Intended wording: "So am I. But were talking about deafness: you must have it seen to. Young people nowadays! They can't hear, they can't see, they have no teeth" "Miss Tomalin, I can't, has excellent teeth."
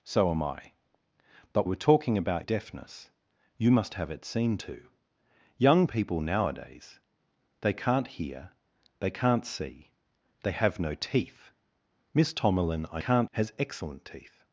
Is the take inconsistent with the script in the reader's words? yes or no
no